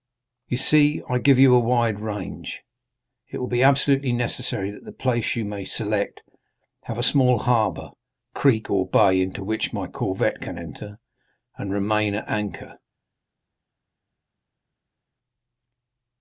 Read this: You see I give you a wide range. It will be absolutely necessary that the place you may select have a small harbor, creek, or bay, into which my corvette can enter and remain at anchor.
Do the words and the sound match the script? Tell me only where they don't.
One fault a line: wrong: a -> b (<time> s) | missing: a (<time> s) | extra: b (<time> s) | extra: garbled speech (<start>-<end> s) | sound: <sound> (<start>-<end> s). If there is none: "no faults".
no faults